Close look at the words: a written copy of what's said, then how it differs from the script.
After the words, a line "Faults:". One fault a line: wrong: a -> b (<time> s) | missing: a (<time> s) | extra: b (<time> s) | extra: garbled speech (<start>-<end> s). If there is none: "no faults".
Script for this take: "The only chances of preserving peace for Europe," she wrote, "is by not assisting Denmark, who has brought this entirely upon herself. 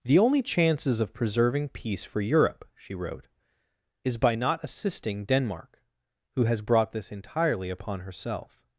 "The only chances of preserving peace for Europe," she wrote, "is by not assisting Denmark, who has brought this entirely upon herself.
Faults:
no faults